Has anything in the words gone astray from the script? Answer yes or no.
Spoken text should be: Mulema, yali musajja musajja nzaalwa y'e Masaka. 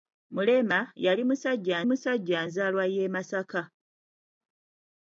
no